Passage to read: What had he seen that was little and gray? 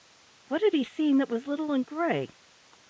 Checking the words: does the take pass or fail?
pass